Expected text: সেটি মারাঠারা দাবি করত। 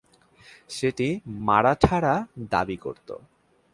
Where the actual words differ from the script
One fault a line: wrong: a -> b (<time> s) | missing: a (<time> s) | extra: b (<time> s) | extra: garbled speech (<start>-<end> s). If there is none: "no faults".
no faults